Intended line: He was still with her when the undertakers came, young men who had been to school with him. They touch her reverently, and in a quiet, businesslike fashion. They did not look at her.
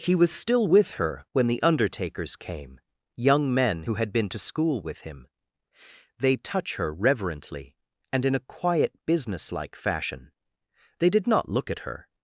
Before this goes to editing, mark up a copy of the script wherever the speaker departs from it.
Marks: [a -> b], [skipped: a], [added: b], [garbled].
He was still with her when the undertakers came, young men who had been to school with him. They touch her reverently, and in a quiet, businesslike fashion. They did not look at her.